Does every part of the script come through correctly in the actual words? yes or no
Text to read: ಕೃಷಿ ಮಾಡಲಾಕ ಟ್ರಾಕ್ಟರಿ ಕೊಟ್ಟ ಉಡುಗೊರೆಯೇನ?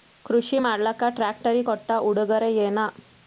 yes